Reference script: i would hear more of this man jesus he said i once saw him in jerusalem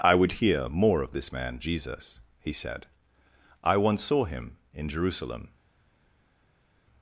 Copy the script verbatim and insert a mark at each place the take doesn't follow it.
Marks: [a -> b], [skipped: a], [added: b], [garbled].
i would hear more of this man jesus he said i once saw him in jerusalem